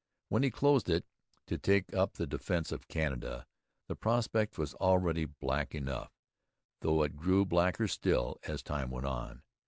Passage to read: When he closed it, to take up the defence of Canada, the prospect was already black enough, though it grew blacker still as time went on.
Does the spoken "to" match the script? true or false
true